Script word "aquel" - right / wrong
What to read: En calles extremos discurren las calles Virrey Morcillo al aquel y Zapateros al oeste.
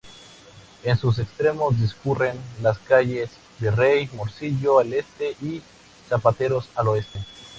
wrong